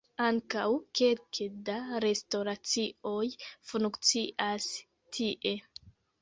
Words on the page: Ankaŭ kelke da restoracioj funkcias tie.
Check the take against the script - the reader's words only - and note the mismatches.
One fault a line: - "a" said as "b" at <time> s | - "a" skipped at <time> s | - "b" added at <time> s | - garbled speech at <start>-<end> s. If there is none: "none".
none